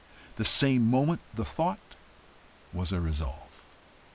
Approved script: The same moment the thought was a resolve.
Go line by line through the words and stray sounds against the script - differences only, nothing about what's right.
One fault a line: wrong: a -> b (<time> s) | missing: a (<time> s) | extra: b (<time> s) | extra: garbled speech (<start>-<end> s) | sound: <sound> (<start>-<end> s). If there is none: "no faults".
no faults